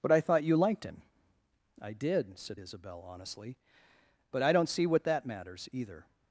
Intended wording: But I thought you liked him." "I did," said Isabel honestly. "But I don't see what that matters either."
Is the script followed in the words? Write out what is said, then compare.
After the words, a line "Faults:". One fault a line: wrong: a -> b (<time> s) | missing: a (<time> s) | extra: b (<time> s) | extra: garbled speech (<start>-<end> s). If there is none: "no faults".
But I thought you liked him." "I did," said Isabel honestly. "But I don't see what that matters either."
Faults:
no faults